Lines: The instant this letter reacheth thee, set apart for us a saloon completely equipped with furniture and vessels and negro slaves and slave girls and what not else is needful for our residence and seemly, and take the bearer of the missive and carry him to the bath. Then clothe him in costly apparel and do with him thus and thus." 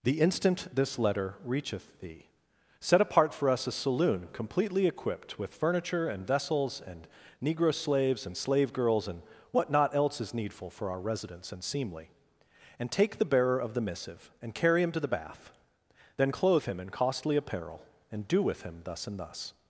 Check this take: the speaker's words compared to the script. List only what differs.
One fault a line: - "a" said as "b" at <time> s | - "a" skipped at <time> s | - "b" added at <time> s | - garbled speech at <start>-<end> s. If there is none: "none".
none